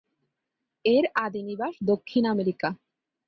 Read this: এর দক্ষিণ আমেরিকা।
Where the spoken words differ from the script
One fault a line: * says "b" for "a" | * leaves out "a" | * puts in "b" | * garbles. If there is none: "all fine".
* puts in "আদি নিবাস"